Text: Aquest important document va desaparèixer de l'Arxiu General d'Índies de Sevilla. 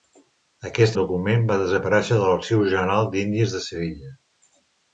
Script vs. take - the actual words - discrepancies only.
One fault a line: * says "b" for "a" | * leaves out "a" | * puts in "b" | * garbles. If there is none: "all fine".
* leaves out "important"